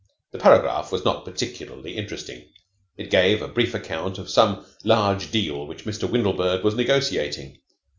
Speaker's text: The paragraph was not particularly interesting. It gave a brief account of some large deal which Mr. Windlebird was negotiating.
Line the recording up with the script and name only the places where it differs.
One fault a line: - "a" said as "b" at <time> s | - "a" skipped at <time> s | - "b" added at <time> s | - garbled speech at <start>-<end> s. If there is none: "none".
none